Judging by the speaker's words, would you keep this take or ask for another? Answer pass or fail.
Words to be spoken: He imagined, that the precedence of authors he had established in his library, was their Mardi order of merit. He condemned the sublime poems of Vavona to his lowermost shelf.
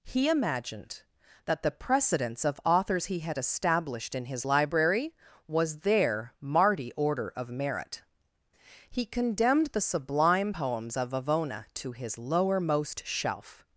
pass